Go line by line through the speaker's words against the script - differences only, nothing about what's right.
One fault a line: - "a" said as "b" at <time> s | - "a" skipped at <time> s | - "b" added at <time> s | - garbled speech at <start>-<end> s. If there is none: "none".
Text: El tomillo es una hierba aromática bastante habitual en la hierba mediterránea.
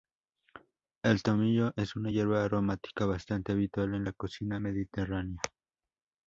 - "hierba" said as "cocina" at 4.1 s